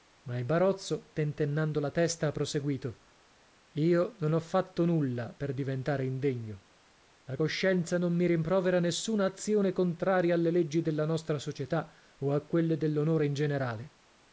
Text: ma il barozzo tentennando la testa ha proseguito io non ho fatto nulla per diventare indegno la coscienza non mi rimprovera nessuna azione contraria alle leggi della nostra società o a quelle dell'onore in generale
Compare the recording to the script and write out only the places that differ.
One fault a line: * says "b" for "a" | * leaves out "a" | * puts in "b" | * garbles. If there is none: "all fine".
all fine